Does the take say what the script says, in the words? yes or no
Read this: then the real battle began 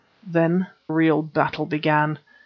no